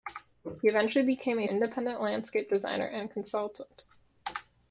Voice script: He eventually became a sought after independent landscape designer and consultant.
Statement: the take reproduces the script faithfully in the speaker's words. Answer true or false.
false